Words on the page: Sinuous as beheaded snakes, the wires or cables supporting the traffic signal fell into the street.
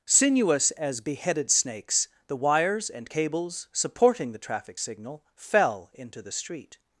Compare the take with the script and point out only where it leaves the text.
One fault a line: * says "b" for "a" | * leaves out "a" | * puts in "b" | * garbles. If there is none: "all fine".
* says "and" for "or"